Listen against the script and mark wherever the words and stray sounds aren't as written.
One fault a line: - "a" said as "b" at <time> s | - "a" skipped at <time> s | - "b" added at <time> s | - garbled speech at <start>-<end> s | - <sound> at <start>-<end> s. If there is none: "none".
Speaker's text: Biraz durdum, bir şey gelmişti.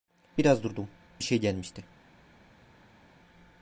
none